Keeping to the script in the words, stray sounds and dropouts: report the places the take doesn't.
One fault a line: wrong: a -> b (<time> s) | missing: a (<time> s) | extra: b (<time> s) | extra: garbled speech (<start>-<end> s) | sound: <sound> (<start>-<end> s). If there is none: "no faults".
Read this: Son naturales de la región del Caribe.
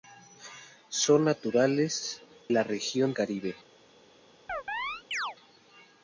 missing: de (2.2 s)
missing: del (3.1 s)
sound: chirp (4.5-5.4 s)